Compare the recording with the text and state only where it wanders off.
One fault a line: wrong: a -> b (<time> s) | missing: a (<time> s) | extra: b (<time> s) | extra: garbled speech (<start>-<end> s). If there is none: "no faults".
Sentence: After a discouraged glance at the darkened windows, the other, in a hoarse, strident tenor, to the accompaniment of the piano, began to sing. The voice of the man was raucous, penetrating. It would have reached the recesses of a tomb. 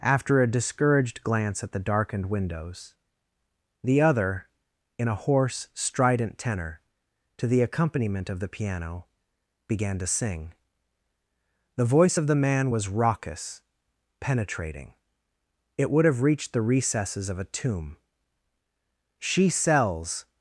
extra: She sells (19.2 s)